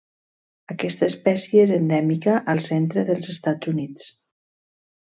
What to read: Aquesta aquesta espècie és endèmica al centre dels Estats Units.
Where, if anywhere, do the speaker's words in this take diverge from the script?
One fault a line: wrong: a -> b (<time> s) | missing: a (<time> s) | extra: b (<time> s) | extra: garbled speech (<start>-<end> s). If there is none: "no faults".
missing: aquesta (1.1 s)